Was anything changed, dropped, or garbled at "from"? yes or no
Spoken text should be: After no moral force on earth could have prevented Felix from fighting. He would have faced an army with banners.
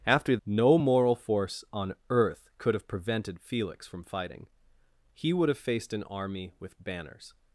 no